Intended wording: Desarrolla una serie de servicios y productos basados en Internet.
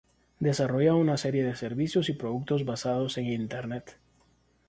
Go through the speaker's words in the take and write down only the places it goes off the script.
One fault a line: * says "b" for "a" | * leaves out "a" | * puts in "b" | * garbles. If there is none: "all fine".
all fine